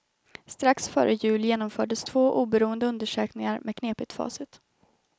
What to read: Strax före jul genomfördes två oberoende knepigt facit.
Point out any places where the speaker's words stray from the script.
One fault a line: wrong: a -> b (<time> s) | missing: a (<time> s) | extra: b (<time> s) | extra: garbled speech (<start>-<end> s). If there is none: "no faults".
extra: undersökningar med (2.9 s)